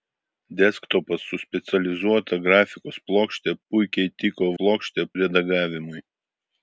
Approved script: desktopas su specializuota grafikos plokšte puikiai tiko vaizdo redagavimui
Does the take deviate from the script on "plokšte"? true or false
false